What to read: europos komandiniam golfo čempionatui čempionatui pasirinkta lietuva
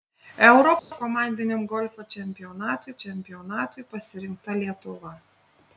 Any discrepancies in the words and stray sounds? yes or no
yes